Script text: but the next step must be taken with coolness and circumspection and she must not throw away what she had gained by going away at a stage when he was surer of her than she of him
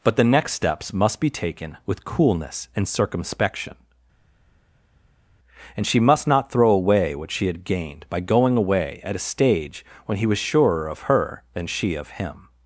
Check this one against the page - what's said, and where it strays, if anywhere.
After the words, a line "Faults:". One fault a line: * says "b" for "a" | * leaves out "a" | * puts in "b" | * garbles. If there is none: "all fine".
but the next steps must be taken with coolness and circumspection and she must not throw away what she had gained by going away at a stage when he was surer of her than she of him
Faults:
* says "steps" for "step"